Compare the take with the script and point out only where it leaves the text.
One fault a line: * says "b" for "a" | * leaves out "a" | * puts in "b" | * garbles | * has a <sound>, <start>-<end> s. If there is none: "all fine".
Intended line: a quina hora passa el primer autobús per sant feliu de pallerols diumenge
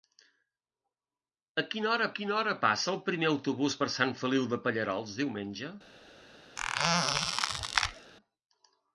* puts in "quina hora"
* has a squeak, 6.6-8.1 s